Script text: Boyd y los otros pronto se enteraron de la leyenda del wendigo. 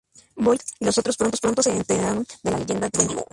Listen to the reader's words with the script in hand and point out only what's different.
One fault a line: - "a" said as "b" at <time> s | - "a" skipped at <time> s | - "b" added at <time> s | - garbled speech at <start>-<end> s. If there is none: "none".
- "del" skipped at 2.9 s